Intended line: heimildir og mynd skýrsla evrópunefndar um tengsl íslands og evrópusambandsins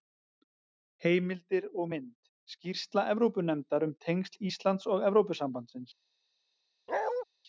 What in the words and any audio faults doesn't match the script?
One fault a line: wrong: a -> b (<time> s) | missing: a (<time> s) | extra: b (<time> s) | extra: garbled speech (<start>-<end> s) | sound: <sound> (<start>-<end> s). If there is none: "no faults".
sound: bark (6.9-7.2 s)